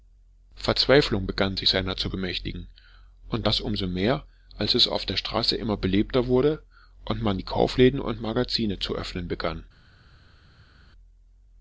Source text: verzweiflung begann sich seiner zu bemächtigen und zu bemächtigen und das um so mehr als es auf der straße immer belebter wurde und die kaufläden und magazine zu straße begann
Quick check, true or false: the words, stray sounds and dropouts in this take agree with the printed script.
false